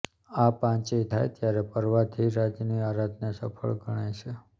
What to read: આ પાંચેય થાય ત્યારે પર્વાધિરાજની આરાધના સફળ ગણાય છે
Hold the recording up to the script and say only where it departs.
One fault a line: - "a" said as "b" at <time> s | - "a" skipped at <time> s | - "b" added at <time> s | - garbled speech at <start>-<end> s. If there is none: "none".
none